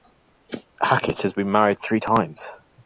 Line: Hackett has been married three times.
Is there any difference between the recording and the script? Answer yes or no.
no